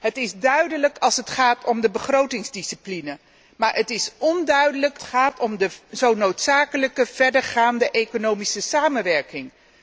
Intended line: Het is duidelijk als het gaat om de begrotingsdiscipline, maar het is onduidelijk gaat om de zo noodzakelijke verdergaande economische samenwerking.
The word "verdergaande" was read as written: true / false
true